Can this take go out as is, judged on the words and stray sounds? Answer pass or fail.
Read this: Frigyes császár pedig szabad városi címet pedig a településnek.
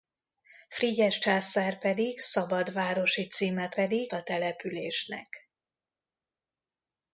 pass